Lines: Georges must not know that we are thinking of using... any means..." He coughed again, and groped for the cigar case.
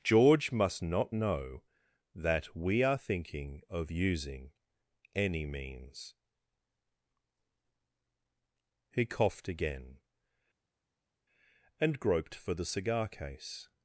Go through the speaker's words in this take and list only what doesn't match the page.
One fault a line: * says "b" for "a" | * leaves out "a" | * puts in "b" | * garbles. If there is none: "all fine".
* says "George" for "Georges"